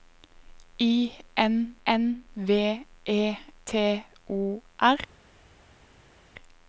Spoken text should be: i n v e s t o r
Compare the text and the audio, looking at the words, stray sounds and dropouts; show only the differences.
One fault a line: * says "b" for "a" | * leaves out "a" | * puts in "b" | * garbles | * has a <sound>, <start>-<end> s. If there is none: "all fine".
* puts in "n"
* leaves out "s"